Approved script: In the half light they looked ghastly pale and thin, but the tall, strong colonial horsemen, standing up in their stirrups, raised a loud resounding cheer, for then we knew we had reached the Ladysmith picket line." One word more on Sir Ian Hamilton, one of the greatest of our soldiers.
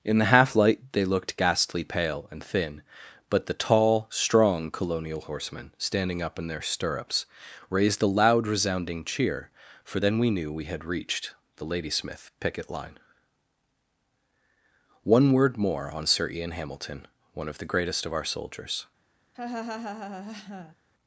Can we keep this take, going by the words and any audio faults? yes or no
no